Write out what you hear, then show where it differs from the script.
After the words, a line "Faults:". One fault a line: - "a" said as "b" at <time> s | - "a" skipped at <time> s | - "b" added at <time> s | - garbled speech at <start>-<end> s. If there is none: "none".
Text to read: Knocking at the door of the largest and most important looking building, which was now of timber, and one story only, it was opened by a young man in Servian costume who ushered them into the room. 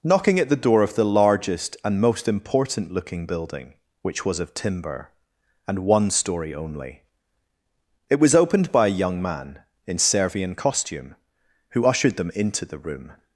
Knocking at the door of the largest and most important looking building, which was of timber, and one story only, it was opened by a young man in Servian costume who ushered them into the room.
Faults:
- "now" skipped at 4.4 s